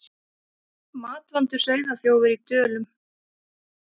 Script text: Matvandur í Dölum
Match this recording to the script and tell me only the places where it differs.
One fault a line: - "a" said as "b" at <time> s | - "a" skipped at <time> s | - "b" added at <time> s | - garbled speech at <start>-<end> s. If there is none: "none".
- "sauðaþjófur" added at 1.6 s